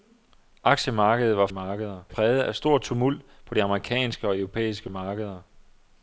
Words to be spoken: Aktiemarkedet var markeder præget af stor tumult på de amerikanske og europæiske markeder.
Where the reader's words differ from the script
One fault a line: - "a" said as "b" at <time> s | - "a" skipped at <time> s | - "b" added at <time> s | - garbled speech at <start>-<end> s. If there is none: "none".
none